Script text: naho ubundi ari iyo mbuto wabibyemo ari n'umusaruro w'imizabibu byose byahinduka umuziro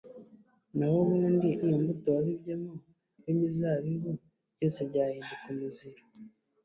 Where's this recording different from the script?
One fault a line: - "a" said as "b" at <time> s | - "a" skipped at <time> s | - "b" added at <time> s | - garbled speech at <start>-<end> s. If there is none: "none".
- "ari" skipped at 1.5 s
- "ari n'umusaruro" skipped at 2.7 s